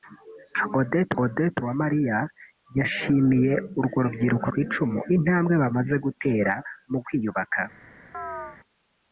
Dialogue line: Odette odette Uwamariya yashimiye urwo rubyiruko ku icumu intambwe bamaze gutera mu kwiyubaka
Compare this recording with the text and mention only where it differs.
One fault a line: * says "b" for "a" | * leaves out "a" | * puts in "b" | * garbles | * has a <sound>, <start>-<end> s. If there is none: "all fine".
* has a chirp, 8.1-8.6 s